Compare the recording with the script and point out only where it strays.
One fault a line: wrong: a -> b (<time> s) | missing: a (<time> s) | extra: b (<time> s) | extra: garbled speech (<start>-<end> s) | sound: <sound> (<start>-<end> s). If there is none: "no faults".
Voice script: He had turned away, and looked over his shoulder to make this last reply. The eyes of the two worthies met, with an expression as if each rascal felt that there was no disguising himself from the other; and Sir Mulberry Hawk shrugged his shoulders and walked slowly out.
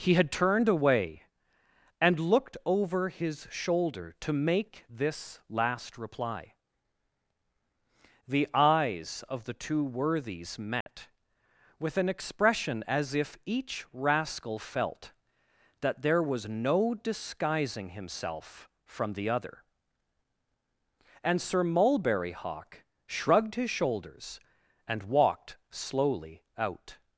sound: dropout (10.8-10.9 s)